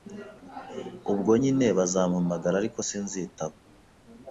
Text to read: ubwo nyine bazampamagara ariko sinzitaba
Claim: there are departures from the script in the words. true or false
false